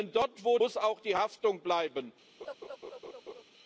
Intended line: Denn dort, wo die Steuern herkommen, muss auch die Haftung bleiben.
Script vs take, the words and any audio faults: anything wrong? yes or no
yes